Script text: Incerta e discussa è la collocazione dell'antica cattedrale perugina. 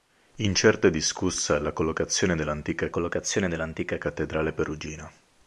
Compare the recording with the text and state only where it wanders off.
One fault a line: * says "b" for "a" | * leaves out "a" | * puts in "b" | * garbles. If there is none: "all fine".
* puts in "collocazione dell'antica"